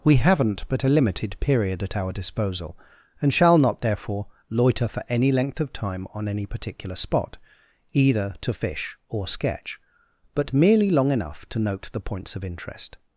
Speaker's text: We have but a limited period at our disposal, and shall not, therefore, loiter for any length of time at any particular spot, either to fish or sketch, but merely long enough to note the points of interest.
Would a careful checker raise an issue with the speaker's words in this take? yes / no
yes